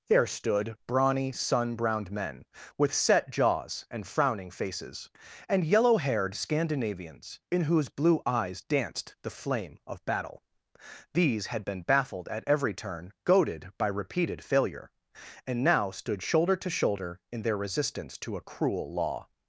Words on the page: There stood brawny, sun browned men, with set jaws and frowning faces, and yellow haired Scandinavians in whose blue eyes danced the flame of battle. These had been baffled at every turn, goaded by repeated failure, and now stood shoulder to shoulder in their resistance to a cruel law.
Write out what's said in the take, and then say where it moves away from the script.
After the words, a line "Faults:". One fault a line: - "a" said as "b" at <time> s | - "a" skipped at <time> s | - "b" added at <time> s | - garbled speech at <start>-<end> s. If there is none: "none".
There stood brawny, sun browned men, with set jaws and frowning faces, and yellow haired Scandinavians in whose blue eyes danced the flame of battle. These had been baffled at every turn, goaded by repeated failure, and now stood shoulder to shoulder in their resistance to a cruel law.
Faults:
none